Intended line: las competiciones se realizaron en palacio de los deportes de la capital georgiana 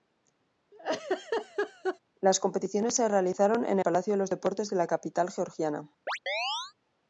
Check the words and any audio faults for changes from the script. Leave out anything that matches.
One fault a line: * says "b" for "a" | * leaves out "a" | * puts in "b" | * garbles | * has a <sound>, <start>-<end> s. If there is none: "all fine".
* has a laugh, 0.7-2.0 s
* has a chirp, 6.1-6.7 s